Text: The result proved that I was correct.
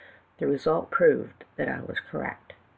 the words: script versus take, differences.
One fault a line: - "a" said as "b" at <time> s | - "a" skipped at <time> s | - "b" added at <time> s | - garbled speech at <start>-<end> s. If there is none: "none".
none